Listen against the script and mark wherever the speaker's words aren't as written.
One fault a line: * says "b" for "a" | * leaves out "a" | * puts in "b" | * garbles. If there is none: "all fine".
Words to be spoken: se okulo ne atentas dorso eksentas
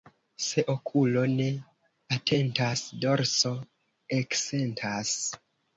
all fine